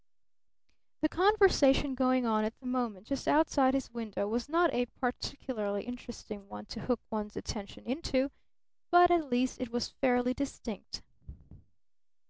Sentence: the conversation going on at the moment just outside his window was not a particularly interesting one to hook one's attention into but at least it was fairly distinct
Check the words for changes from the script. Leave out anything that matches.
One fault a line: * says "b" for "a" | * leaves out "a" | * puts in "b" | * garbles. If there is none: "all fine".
all fine